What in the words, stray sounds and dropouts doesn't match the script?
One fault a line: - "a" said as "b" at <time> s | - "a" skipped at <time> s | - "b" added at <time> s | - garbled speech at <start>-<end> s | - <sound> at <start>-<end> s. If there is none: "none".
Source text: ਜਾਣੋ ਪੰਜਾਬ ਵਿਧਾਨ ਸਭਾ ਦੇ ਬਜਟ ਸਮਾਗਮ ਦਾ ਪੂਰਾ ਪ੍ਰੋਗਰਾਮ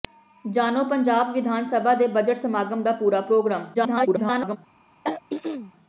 - garbled speech at 3.7-4.6 s
- throat clearing at 5.0-5.7 s